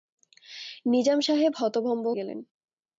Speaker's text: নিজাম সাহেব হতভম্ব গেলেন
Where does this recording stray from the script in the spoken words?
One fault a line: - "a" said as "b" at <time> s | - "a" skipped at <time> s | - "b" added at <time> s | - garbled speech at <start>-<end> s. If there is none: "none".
none